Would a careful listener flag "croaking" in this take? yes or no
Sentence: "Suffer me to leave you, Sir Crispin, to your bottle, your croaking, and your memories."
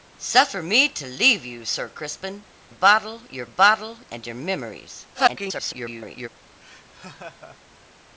yes